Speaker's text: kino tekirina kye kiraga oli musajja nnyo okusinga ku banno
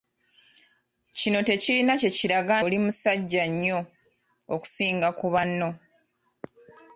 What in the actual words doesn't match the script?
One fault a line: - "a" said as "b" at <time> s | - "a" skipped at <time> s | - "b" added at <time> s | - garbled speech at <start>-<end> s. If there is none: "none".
none